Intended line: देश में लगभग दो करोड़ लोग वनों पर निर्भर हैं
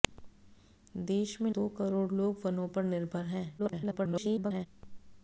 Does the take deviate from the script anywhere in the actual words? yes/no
yes